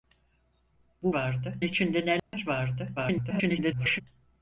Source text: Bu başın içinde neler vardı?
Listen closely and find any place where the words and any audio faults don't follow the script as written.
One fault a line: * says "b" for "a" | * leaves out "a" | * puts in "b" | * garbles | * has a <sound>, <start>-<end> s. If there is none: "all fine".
* says "vardı" for "başın"
* has a dropout, 2.2-2.3 s
* garbles